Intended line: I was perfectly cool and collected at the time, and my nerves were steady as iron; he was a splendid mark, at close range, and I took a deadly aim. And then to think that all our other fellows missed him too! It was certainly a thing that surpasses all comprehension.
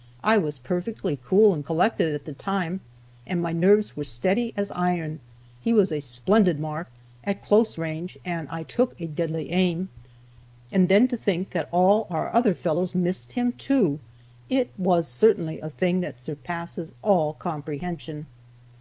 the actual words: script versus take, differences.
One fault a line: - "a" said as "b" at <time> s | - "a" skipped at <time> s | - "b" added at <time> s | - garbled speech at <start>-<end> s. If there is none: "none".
none